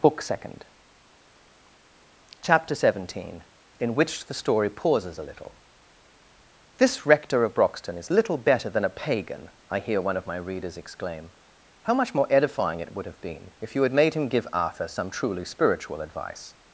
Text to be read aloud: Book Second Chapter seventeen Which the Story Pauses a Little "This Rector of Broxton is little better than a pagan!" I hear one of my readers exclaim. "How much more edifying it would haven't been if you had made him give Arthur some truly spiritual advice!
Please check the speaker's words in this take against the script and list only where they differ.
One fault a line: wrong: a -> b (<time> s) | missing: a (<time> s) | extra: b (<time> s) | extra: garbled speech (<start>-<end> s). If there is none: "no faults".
extra: In (3.8 s)
wrong: haven't -> have (13.1 s)